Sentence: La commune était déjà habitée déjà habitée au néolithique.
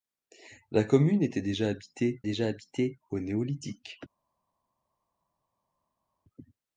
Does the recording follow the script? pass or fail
pass